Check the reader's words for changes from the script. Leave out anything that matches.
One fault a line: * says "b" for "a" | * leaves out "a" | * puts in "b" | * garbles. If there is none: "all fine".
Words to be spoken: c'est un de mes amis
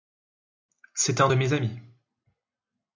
all fine